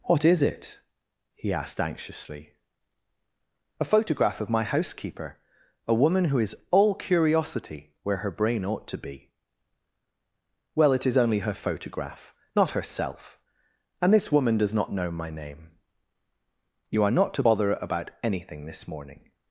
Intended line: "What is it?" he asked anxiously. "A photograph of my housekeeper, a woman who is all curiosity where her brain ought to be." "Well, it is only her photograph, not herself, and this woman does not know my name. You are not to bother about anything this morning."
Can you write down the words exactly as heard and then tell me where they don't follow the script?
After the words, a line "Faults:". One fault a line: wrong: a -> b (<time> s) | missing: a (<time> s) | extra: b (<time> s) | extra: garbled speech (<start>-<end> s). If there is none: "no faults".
"What is it?" he asked anxiously. "A photograph of my housekeeper, a woman who is all curiosity where her brain ought to be." "Well, it is only her photograph, not herself, and this woman does not know my name. You are not to bother about anything this morning."
Faults:
no faults